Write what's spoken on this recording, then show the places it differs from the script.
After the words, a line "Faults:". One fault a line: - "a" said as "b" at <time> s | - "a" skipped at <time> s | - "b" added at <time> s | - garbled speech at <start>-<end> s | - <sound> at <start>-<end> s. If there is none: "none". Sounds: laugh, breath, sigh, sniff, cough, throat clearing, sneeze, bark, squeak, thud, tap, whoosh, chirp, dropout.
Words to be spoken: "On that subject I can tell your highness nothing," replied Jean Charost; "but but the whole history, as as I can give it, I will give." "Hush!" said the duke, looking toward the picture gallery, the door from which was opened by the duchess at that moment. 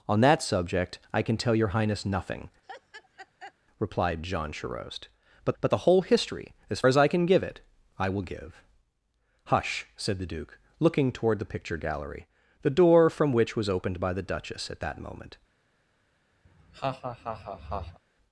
"On that subject I can tell your highness nothing," replied Jean Charost; "but but the whole history, as as I can give it, I will give." "Hush!" said the duke, looking toward the picture gallery, the door from which was opened by the duchess at that moment.
Faults:
- laugh at 2.6-3.5 s
- laugh at 16.4-18.0 s